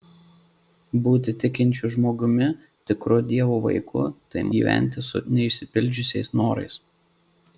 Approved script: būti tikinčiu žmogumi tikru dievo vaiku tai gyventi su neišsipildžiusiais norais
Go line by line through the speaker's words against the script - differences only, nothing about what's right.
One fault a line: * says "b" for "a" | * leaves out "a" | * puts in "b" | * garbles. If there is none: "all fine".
all fine